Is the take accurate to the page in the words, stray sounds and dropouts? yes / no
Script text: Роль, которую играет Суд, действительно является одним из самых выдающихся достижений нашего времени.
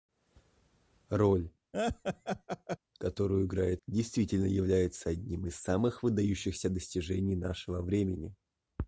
no